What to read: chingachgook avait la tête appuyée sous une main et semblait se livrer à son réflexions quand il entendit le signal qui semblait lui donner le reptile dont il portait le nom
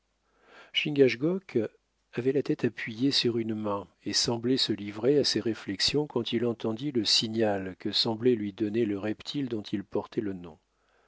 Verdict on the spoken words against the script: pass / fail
fail